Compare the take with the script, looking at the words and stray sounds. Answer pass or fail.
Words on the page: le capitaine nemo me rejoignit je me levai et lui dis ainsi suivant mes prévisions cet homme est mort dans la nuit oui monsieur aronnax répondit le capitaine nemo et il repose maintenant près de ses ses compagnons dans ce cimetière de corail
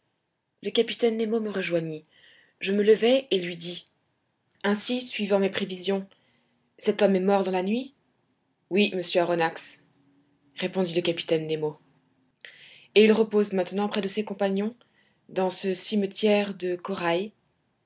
fail